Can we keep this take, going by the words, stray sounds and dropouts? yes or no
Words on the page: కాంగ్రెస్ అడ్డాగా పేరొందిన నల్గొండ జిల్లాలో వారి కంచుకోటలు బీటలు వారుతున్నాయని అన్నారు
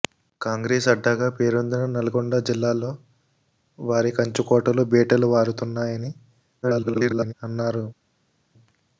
no